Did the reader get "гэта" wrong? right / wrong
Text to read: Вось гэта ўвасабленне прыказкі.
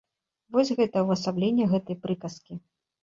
right